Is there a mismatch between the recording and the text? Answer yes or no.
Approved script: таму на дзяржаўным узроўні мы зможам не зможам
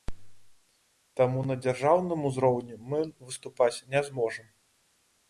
yes